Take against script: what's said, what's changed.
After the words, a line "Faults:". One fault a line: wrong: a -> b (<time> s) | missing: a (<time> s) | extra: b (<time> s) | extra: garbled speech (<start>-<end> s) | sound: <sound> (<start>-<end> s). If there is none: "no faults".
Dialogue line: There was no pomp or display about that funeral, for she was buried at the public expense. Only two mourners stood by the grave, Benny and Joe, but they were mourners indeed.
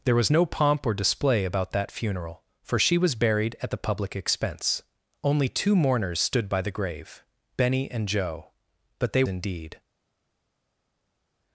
There was no pomp or display about that funeral, for she was buried at the public expense. Only two mourners stood by the grave, Benny and Joe, but they indeed.
Faults:
missing: were mourners (9.2 s)